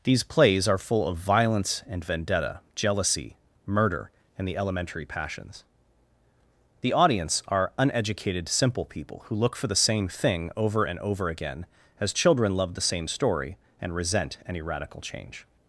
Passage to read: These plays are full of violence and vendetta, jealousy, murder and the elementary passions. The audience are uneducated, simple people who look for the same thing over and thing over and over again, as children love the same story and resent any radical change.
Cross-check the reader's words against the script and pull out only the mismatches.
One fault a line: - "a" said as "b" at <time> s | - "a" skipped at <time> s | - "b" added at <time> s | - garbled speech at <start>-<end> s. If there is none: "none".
- "thing over and" skipped at 11.0 s